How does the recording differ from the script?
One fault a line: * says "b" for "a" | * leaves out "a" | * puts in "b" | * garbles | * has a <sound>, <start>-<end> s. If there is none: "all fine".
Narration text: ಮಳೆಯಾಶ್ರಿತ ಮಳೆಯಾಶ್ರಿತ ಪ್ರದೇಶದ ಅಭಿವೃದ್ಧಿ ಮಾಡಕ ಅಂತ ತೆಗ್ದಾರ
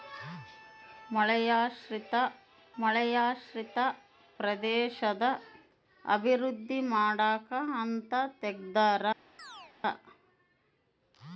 * has a chirp, 9.4-9.7 s